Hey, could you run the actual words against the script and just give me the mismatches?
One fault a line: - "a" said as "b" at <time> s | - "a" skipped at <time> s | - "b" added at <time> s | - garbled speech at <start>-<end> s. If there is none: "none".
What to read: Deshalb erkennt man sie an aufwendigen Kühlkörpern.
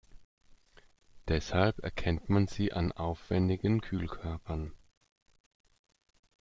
none